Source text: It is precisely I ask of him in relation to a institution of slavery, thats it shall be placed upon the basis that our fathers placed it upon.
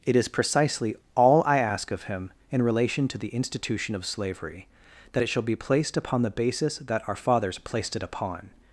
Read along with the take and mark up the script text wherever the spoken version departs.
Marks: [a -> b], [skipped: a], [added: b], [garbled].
It is precisely [added: all] I ask of him in relation to [a -> the] institution of slavery, [thats -> that] it shall be placed upon the basis that our fathers placed it upon.